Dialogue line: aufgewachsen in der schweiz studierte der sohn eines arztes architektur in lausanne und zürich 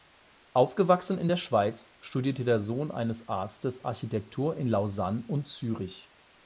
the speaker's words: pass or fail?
pass